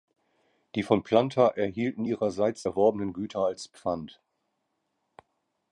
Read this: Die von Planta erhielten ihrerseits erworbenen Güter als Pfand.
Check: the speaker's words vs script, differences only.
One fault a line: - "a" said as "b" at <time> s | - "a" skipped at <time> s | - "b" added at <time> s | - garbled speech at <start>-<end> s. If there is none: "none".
none